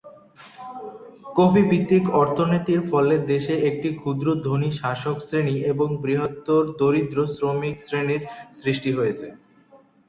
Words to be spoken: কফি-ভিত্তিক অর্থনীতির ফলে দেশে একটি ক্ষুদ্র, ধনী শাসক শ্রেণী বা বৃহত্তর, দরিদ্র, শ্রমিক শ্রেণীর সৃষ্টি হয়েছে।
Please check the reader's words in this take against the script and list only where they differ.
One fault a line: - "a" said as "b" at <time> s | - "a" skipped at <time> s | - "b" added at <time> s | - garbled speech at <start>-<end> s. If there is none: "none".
- "বা" said as "এবং" at 5.6 s